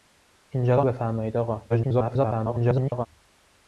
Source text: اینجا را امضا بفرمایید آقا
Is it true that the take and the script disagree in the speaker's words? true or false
true